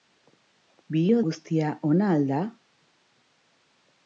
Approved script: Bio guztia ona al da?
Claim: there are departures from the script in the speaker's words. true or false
false